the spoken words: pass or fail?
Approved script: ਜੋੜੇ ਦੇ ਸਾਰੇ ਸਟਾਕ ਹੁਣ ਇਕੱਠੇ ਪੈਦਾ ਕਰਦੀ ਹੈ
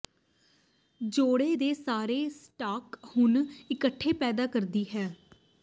pass